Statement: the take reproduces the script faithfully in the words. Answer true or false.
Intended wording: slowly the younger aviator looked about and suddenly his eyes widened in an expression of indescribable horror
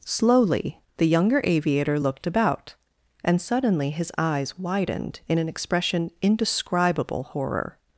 false